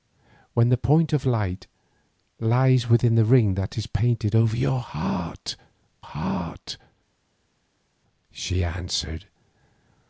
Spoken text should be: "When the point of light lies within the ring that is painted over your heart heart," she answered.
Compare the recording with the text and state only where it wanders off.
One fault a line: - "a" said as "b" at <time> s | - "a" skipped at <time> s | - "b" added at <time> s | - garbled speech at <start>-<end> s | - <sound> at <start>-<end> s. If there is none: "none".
none